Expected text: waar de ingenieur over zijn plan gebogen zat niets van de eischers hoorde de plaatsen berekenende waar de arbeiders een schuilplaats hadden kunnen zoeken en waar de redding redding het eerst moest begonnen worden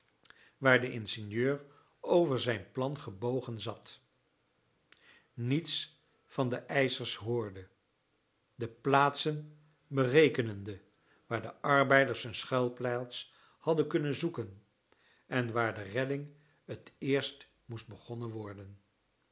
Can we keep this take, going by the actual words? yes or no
no